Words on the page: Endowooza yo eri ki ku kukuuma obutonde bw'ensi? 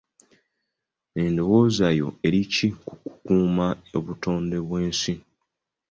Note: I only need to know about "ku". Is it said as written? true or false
true